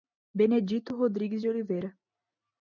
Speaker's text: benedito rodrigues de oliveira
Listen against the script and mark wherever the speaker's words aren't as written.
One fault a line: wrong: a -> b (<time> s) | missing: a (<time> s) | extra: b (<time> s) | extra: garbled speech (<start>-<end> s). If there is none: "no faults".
no faults